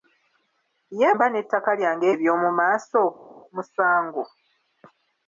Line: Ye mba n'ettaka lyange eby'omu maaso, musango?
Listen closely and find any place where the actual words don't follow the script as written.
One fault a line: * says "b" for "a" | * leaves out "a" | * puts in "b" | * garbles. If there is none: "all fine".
all fine